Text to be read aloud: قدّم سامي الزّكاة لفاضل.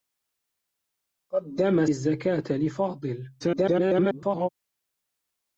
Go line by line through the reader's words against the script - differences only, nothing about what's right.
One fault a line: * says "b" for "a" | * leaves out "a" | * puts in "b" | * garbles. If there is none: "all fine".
* leaves out "سامي"
* garbles